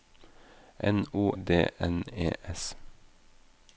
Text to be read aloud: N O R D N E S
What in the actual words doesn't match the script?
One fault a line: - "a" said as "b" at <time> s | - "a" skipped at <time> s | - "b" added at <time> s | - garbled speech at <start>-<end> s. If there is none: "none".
- "R" skipped at 1.3 s